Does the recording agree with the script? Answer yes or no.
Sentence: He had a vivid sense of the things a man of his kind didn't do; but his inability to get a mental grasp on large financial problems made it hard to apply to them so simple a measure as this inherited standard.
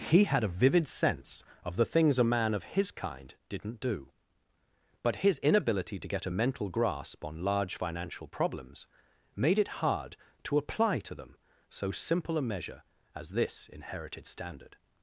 yes